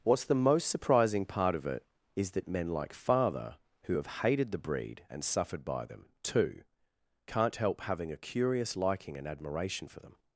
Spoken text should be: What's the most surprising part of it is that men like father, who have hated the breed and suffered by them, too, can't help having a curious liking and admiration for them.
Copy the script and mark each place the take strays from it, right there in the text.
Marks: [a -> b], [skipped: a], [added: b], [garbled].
What's the most surprising part of it is that men like father, who have hated the breed and suffered by them, too, can't help having a curious liking and admiration for them.